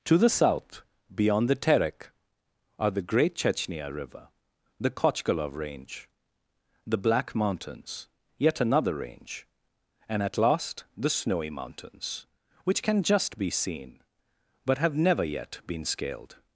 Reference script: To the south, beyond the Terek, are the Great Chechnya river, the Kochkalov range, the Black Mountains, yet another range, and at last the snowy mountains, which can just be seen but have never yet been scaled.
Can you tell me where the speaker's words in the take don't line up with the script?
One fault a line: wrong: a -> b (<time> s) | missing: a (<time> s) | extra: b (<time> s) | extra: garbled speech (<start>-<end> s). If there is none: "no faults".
no faults